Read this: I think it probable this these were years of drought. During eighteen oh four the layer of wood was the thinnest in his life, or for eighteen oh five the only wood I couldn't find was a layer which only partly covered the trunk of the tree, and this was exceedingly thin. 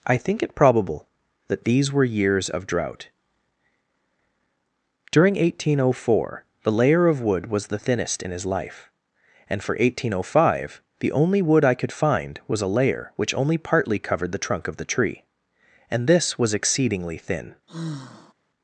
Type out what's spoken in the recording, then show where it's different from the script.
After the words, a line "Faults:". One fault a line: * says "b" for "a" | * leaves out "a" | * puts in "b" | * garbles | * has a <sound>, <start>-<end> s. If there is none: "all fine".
I think it probable that these were years of drought. During eighteen oh four the layer of wood was the thinnest in his life, and for eighteen oh five the only wood I could find was a layer which only partly covered the trunk of the tree, and this was exceedingly thin.
Faults:
* says "that" for "this"
* says "and" for "or"
* says "could" for "couldn't"
* has a sigh, 17.7-18.3 s